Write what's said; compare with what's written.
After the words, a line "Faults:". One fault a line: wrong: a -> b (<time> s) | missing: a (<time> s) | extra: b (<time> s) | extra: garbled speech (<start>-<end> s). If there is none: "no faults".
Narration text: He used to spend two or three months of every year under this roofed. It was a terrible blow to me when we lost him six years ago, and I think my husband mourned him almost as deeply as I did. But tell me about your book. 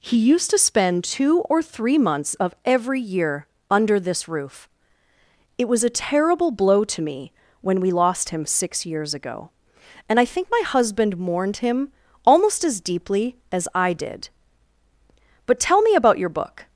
He used to spend two or three months of every year under this roof. It was a terrible blow to me when we lost him six years ago, and I think my husband mourned him almost as deeply as I did. But tell me about your book.
Faults:
wrong: roofed -> roof (4.3 s)